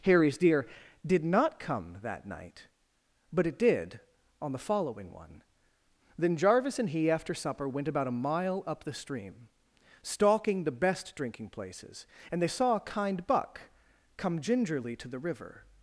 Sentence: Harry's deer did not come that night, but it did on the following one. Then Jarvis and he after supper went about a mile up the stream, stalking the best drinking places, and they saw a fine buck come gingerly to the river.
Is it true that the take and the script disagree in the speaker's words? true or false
true